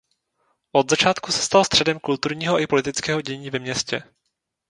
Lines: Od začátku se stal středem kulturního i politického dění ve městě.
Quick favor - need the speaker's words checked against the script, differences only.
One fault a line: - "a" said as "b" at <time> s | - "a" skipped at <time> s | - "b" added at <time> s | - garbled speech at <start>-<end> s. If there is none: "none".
none